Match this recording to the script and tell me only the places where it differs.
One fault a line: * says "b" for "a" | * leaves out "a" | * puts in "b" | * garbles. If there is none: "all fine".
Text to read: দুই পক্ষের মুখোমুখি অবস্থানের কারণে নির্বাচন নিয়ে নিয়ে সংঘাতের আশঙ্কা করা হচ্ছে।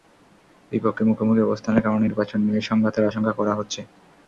* leaves out "নিয়ে"